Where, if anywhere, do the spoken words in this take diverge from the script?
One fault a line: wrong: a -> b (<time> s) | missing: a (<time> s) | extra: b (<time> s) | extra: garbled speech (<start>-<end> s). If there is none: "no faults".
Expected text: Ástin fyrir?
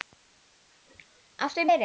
no faults